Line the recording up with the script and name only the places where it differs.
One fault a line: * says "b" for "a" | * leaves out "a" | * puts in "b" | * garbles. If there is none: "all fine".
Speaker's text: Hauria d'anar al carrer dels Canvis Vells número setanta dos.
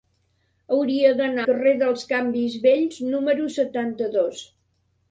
* leaves out "al"